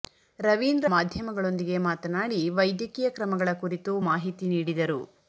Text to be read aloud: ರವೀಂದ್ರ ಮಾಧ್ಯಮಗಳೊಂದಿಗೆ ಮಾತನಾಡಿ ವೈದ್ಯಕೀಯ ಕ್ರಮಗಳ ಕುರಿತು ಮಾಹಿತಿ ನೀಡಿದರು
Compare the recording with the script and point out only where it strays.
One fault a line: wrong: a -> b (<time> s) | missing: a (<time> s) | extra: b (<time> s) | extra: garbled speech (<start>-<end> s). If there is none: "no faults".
no faults